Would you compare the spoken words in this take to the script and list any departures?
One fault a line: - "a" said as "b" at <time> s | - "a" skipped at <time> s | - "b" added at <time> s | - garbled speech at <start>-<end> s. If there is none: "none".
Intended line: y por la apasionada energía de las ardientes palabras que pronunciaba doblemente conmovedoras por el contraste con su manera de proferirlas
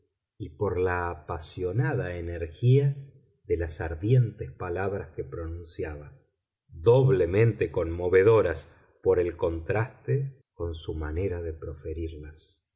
none